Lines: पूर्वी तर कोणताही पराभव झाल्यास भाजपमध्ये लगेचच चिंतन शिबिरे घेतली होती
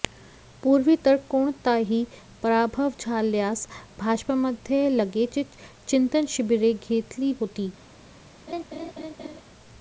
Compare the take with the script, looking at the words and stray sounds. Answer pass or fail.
fail